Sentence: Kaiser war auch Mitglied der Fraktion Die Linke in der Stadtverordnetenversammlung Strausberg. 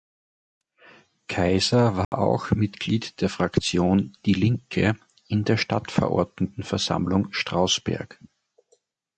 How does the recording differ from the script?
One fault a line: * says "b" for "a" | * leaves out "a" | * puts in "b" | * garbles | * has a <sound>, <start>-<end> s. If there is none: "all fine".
* has a dropout, 2.0-2.1 s